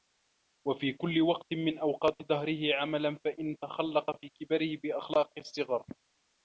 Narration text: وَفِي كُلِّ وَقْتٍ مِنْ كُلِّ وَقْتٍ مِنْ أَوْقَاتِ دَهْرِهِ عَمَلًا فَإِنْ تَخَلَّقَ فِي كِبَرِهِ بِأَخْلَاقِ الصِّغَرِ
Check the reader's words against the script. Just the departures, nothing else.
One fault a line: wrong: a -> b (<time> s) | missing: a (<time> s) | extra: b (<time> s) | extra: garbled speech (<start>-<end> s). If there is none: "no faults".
missing: كُلِّ وَقْتٍ مِنْ (1.8 s)